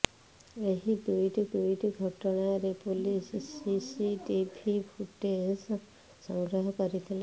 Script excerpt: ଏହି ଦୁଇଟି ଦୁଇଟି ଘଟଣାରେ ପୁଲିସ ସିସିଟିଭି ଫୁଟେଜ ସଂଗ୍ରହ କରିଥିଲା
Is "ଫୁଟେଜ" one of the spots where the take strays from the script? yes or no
no